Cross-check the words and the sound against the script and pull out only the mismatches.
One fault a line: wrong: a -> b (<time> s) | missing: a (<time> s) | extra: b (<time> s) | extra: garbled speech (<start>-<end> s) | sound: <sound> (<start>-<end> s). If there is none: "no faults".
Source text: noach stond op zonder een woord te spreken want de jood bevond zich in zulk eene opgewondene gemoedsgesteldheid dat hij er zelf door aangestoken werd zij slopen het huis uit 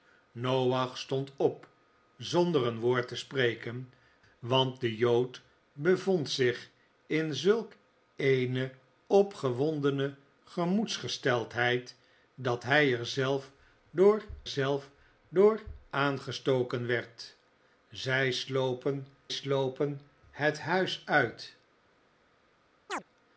extra: zelf door (14.5 s)
extra: slopen (19.3 s)
sound: chirp (22.9-23.0 s)